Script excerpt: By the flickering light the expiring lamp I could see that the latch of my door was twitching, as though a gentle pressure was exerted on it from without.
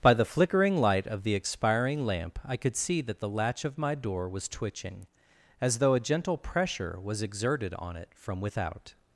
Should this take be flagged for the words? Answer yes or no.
yes